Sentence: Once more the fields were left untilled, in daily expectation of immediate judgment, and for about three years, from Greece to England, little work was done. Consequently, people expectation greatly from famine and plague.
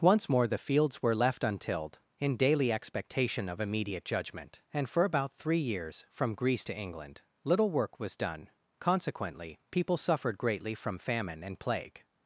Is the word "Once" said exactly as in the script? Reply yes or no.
yes